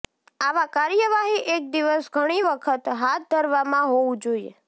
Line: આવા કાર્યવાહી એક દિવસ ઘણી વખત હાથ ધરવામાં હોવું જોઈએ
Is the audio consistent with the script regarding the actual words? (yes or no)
yes